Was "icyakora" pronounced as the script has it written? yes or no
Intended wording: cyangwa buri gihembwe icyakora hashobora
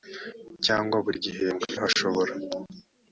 no